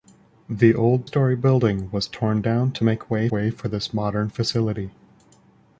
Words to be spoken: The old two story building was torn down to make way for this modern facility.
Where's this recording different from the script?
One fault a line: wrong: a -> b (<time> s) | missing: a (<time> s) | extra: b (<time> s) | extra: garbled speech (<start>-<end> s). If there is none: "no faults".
missing: two (1.1 s)
extra: way (3.3 s)